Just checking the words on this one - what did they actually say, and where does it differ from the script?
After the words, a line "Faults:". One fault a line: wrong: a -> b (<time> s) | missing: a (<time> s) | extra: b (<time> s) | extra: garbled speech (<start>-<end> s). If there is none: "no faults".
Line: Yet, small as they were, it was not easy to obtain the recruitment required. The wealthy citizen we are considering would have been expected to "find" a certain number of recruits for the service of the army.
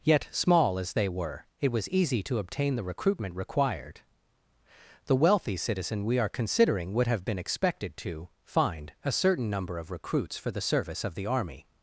Yet, small as they were, it was easy to obtain the recruitment required. The wealthy citizen we are considering would have been expected to "find" a certain number of recruits for the service of the army.
Faults:
missing: not (1.9 s)